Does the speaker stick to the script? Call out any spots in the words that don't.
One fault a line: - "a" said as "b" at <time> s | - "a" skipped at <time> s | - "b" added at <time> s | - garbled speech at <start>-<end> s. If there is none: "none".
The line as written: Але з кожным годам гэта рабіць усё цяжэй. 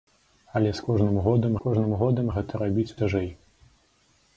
- "кожным годам" added at 1.6 s
- "усё" skipped at 2.9 s